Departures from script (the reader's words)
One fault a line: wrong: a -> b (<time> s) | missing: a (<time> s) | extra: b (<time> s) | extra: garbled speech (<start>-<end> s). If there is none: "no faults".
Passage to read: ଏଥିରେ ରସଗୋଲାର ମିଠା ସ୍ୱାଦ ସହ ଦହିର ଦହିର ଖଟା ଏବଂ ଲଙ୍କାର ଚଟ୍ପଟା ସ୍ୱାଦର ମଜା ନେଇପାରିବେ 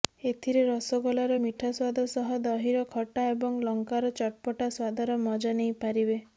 missing: ଦହିର (2.8 s)